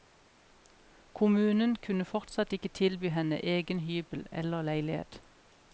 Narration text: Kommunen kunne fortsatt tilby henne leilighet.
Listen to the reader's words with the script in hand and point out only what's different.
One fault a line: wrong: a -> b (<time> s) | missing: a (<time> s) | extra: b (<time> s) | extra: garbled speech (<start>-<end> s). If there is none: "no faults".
extra: ikke (2.5 s)
extra: egen hybel eller (3.5 s)